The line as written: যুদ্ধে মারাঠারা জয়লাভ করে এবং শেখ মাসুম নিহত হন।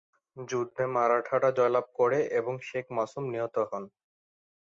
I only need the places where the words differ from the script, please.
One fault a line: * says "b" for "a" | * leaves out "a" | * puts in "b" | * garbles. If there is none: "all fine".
all fine